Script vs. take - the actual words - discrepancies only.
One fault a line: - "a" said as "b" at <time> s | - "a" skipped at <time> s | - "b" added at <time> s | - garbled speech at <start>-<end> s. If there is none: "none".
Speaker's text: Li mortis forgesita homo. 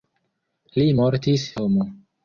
- "forgesita" skipped at 1.5 s